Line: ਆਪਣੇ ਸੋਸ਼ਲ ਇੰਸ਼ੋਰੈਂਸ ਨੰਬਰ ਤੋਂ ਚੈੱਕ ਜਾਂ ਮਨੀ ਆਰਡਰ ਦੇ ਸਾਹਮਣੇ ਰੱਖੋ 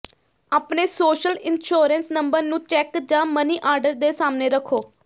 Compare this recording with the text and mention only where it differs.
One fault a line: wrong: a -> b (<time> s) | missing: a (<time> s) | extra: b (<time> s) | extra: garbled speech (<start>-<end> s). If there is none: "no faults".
wrong: ਤੋਂ -> ਨੂੰ (2.4 s)